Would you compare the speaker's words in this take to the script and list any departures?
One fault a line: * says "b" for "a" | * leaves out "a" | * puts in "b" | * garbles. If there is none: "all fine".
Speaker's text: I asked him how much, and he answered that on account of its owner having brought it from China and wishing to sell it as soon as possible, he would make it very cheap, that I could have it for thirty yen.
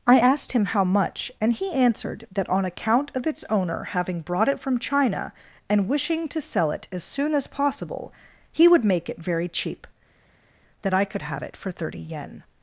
all fine